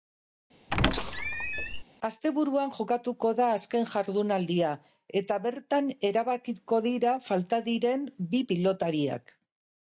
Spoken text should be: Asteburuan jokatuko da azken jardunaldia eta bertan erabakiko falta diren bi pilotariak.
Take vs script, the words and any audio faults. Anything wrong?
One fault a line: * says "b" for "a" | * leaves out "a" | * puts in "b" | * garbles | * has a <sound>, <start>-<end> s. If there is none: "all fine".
* has a squeak, 0.7-1.8 s
* puts in "dira"